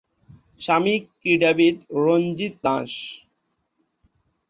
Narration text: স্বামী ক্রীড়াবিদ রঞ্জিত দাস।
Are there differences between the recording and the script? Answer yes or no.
no